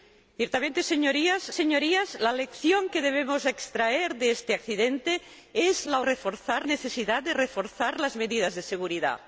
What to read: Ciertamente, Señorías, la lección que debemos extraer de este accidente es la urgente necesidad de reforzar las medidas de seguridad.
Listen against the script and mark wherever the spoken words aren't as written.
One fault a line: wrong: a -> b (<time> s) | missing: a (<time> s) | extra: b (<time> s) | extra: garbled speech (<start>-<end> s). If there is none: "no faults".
extra: Señorías (1.5 s)
wrong: urgente -> reforzar (6.0 s)